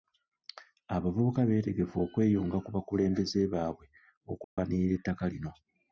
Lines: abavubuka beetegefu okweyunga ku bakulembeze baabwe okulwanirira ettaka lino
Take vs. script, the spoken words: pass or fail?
pass